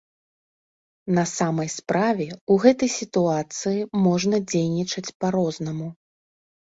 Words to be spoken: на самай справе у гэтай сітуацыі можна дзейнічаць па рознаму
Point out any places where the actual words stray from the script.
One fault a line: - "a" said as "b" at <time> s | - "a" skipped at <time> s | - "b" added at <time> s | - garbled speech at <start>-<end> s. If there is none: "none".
none